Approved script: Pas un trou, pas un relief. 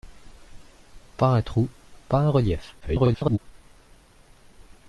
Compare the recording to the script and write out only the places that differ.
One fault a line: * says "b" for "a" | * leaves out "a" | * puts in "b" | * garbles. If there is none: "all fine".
* garbles